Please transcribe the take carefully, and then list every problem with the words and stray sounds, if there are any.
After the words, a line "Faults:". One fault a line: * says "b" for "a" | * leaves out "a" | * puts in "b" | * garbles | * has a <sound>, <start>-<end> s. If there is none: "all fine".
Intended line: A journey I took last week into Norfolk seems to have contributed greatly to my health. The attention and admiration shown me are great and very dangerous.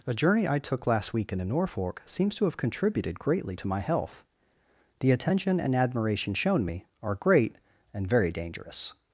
A journey I took last week into Norfolk seems to have contributed greatly to my health. The attention and admiration shown me are great and very dangerous.
Faults:
all fine